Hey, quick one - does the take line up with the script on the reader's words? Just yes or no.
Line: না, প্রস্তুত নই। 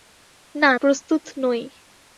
yes